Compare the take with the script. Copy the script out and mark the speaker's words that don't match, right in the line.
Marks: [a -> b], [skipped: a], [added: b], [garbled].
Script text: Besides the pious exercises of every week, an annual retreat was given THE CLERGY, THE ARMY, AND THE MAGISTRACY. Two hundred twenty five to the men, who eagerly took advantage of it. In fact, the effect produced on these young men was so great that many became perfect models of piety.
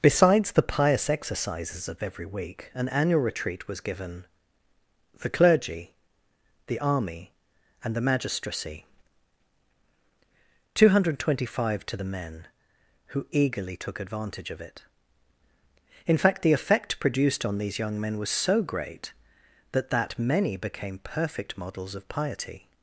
Besides the pious exercises of every week, an annual retreat was given THE CLERGY, THE ARMY, AND THE MAGISTRACY. Two hundred twenty five to the men, who eagerly took advantage of it. In fact, the effect produced on these young men was so great that [added: that] many became perfect models of piety.